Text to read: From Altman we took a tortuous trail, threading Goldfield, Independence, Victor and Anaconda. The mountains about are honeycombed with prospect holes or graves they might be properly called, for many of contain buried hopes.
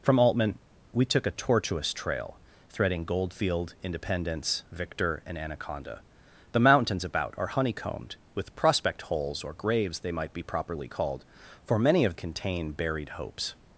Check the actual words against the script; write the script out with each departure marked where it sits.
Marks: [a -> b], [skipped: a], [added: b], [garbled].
From Altman we took a tortuous trail, threading Goldfield, Independence, Victor and Anaconda. The mountains about are honeycombed with prospect holes or graves they might be properly called, for many of contain buried hopes.